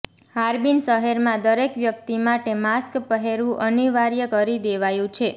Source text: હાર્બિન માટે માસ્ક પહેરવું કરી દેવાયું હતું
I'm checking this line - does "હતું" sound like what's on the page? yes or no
no